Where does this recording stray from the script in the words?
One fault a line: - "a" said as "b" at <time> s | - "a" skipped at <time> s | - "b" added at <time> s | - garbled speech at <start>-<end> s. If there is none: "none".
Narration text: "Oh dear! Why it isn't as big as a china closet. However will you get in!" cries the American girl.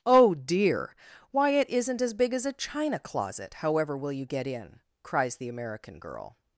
none